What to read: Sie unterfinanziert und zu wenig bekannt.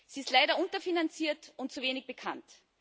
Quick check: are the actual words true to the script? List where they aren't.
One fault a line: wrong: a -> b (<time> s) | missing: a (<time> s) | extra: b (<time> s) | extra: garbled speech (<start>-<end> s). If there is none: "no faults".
extra: ist leider (0.2 s)